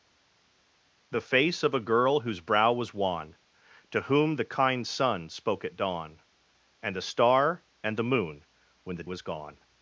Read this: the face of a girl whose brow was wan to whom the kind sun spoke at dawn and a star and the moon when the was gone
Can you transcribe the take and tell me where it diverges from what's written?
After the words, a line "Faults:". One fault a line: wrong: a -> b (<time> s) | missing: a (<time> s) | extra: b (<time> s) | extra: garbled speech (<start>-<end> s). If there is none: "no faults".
the face of a girl whose brow was wan to whom the kind sun spoke at dawn and a star and the moon when the was gone
Faults:
no faults